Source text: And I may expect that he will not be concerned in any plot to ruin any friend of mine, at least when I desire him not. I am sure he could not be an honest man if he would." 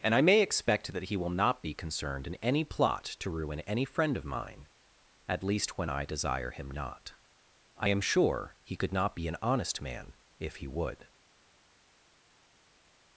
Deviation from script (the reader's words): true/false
false